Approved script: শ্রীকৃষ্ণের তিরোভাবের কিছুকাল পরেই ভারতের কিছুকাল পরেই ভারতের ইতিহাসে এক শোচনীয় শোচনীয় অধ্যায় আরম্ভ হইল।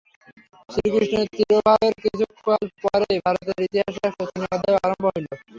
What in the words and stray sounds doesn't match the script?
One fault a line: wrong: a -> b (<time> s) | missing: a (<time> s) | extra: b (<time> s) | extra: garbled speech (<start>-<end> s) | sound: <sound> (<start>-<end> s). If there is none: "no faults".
missing: কিছুকাল পরেই ভারতের (3.6 s)
missing: শোচনীয় (4.5 s)